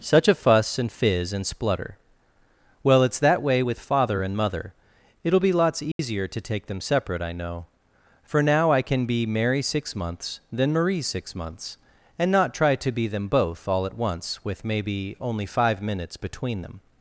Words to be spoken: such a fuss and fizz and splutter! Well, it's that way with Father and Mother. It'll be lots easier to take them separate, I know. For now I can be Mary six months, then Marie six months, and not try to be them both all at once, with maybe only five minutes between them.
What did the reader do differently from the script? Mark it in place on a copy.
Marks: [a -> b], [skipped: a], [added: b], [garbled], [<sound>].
such a fuss and fizz and splutter! Well, it's that way with Father and Mother. It'll be lots easier [dropout] to take them separate, I know. For now I can be Mary six months, then Marie six months, and not try to be them both all at once, with maybe only five minutes between them.